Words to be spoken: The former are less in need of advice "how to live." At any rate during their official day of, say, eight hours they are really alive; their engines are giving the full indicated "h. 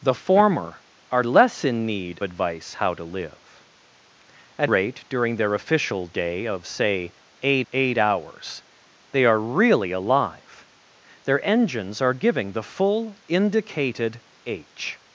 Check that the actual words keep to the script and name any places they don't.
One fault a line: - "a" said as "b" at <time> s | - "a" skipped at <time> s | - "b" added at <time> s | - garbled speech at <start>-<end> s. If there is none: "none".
- "of" skipped at 2.2 s
- "any" skipped at 4.7 s
- "eight" added at 7.7 s